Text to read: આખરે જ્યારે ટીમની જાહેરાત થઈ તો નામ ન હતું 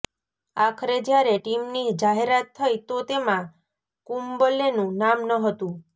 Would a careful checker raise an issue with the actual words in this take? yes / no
yes